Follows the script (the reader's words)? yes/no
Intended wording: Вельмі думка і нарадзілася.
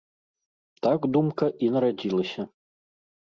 no